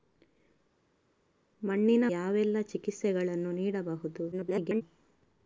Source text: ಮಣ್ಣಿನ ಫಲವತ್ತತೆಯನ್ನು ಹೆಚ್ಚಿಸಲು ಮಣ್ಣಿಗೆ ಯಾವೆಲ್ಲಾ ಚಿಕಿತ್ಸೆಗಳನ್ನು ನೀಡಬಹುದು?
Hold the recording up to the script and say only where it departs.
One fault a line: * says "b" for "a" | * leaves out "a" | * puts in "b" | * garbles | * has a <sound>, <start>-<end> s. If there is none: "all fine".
* leaves out "ಫಲವತ್ತತೆಯನ್ನು ಹೆಚ್ಚಿಸಲು ಮಣ್ಣಿಗೆ"
* garbles